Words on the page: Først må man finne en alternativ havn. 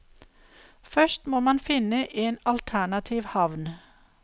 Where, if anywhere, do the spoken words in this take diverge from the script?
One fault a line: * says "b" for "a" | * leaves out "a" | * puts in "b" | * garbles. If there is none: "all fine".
all fine